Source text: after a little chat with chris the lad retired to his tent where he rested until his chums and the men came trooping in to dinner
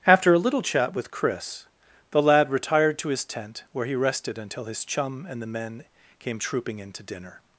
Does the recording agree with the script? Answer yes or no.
no